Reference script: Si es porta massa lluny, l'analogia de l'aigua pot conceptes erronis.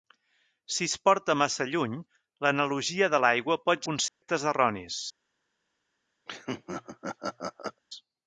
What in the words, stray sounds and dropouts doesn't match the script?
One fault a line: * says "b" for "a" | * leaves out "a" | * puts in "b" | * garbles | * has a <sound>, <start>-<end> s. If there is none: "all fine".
* has a dropout, 4.1-4.2 s
* has a laugh, 6.3-7.8 s